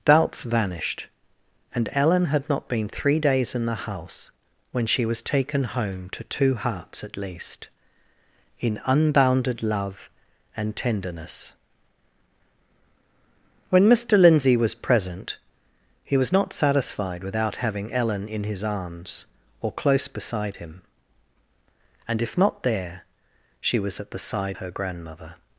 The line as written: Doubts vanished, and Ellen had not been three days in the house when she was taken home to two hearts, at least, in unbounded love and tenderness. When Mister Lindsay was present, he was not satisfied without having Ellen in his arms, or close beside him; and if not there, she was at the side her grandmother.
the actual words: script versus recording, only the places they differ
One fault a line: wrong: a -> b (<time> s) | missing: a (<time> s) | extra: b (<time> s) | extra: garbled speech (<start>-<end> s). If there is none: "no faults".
no faults